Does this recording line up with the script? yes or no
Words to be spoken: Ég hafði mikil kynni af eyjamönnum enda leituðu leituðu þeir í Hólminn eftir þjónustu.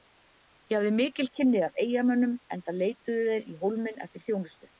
no